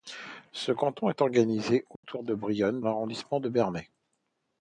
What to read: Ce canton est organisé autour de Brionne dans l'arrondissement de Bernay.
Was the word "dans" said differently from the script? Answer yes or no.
yes